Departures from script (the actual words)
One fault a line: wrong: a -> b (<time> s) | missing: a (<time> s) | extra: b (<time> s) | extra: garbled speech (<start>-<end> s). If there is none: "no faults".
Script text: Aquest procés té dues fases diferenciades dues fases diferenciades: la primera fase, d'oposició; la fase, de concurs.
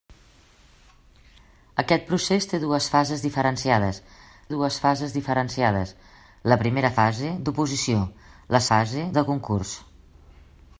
no faults